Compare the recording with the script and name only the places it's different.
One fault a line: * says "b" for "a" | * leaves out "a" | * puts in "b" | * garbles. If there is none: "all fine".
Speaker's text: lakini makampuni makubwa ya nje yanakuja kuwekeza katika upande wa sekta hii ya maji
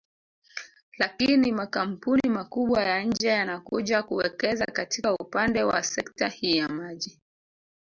all fine